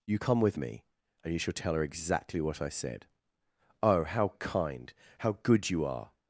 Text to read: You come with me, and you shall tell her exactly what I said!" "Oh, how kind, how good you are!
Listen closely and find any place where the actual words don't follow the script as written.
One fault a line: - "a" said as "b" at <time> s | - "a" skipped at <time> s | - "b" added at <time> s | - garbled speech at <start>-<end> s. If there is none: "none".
none